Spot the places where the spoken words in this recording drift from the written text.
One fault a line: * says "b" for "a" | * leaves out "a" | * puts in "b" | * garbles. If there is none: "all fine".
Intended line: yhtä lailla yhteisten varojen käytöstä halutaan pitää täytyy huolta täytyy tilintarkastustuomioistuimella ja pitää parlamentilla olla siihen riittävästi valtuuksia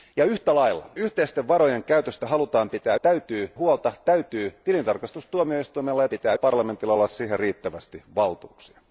all fine